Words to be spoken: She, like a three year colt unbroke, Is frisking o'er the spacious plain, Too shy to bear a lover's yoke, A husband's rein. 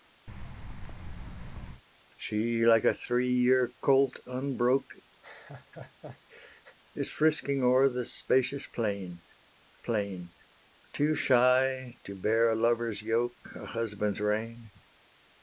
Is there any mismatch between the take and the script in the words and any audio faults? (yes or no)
yes